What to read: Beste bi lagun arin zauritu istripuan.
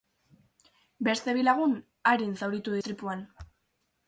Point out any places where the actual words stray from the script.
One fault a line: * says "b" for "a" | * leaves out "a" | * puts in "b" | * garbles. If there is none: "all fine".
all fine